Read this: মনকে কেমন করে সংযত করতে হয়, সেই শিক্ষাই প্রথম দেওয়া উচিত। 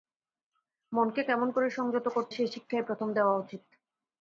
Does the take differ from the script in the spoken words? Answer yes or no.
yes